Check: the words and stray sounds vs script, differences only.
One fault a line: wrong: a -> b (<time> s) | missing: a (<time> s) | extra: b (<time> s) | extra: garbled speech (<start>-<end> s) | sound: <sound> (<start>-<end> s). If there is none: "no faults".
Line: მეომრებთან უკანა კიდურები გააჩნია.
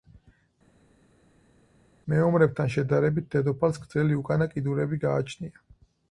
extra: შედარებით დედოფალს გრძელი (2.7 s)